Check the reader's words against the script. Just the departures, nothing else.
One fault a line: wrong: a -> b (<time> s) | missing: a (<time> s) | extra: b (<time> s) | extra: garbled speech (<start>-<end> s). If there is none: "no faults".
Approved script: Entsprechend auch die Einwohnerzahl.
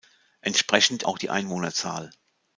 no faults